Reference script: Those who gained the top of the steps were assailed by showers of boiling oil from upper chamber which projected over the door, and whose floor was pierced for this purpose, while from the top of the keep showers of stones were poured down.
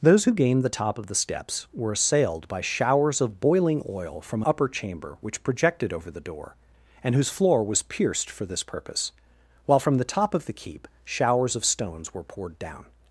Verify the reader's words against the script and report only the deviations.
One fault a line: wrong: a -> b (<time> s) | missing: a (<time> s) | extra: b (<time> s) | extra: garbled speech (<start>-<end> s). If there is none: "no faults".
no faults